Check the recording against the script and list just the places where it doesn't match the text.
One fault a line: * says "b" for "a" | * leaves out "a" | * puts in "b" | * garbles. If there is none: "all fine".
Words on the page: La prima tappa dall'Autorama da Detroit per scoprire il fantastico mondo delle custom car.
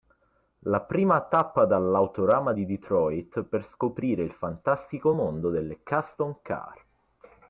* says "di" for "da"